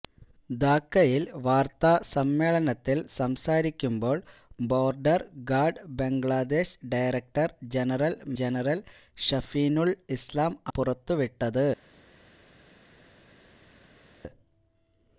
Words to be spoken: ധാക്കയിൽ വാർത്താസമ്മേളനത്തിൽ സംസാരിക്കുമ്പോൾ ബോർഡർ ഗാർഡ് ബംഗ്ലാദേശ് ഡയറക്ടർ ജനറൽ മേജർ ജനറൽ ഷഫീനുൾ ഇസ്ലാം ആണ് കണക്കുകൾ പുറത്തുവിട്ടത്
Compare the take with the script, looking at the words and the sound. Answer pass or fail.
fail